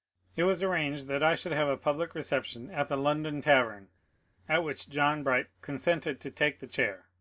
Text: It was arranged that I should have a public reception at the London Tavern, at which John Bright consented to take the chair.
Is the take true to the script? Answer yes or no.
yes